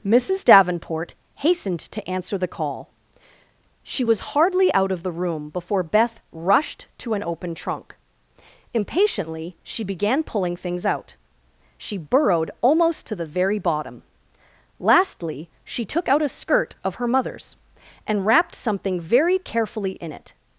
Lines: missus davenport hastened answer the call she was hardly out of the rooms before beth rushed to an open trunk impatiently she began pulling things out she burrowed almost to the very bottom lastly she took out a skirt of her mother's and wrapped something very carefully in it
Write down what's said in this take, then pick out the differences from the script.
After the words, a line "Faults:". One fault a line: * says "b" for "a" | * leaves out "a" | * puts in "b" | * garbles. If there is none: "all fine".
missus davenport hastened to answer the call she was hardly out of the room before beth rushed to an open trunk impatiently she began pulling things out she burrowed almost to the very bottom lastly she took out a skirt of her mother's and wrapped something very carefully in it
Faults:
* puts in "to"
* says "room" for "rooms"